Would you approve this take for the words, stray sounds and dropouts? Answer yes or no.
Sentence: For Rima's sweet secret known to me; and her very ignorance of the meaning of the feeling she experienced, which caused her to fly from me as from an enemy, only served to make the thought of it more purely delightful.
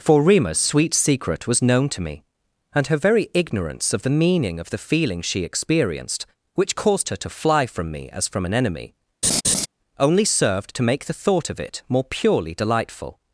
no